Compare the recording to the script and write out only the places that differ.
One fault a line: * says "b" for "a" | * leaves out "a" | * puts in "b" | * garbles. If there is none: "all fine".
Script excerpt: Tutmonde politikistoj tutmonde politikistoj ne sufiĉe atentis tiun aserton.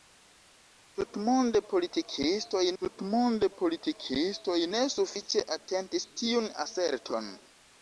all fine